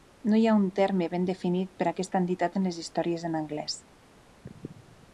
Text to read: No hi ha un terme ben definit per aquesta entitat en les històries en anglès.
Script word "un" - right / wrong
right